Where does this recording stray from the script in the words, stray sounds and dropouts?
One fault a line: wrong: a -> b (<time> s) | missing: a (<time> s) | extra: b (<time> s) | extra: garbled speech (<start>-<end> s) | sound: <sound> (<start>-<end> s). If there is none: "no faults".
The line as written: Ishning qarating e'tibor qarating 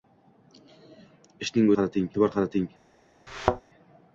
sound: thud (3.3-3.6 s)